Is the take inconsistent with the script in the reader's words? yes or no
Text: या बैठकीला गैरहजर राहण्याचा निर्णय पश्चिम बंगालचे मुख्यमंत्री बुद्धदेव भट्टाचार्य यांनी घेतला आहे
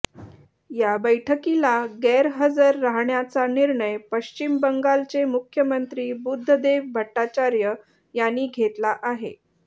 no